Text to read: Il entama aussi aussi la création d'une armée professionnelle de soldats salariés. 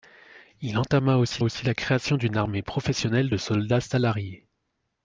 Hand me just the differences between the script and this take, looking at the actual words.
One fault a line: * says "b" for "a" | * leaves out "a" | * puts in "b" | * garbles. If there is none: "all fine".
all fine